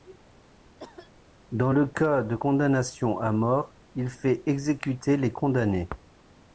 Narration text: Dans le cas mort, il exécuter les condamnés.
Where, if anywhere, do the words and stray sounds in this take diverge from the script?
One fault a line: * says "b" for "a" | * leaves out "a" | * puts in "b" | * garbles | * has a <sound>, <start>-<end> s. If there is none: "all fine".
* has a cough, 0.8-1.1 s
* puts in "de condamnation à"
* puts in "fait"